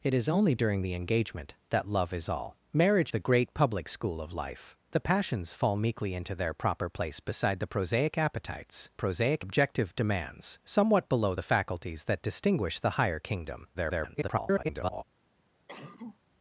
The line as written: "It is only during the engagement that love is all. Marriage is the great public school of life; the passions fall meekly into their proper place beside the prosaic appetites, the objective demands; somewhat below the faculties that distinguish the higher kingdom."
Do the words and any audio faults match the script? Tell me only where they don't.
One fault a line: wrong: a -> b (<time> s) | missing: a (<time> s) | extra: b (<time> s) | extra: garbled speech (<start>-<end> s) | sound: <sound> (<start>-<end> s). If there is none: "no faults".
missing: is (3.1 s)
wrong: the -> prosaic (8.9 s)
extra: garbled speech (13.7-15.0 s)
sound: cough (15.7-16.2 s)